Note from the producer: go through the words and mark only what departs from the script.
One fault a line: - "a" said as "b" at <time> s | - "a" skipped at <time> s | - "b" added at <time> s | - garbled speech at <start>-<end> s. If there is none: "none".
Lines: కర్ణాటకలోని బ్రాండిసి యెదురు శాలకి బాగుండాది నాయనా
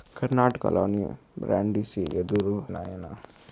- "శాలకి బాగుండాది" skipped at 2.6 s